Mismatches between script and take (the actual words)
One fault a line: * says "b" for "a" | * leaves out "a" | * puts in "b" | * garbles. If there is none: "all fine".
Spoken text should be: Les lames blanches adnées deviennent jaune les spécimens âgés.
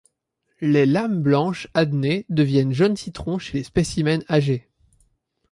* puts in "citron chez"